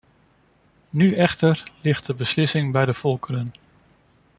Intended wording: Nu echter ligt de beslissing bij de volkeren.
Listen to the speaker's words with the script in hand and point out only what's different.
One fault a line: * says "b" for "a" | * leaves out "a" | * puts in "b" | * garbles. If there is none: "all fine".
all fine